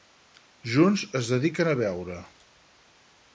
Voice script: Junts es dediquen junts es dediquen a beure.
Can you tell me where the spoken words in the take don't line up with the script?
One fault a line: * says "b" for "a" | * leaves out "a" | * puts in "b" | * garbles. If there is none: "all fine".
* leaves out "junts es dediquen"